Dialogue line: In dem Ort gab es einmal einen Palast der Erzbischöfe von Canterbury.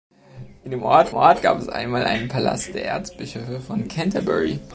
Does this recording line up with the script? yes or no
no